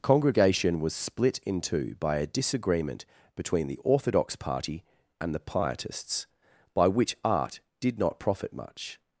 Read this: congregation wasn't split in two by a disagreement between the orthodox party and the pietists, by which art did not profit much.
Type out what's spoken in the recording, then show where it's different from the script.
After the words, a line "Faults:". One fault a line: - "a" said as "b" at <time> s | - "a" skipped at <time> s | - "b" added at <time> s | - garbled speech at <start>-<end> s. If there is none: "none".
congregation was split in two by a disagreement between the orthodox party and the pietists, by which art did not profit much.
Faults:
- "wasn't" said as "was" at 0.8 s